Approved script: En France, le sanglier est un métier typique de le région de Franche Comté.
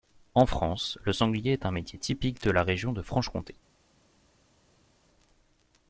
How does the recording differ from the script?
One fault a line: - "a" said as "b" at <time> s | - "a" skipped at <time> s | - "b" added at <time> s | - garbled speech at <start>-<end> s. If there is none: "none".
- "le" said as "la" at 2.5 s